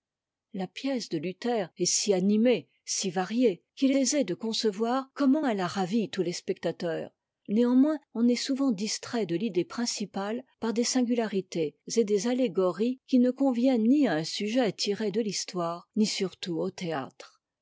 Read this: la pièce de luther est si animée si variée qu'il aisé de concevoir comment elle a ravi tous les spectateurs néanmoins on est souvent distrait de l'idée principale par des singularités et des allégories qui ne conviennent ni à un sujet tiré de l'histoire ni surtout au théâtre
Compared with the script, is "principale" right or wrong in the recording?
right